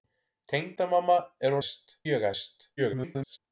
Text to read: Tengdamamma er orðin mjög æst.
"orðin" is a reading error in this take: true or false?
true